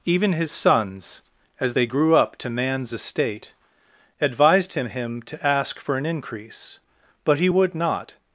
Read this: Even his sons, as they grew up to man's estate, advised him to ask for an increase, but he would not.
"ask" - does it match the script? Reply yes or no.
yes